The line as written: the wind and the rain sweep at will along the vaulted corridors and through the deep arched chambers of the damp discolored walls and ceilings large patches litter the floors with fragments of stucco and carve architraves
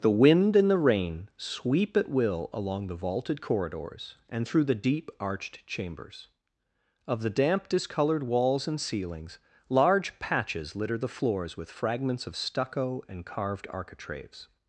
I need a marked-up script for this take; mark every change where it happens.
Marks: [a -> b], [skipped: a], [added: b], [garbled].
the wind and the rain sweep at will along the vaulted corridors and through the deep arched chambers of the damp discolored walls and ceilings large patches litter the floors with fragments of stucco and [carve -> carved] architraves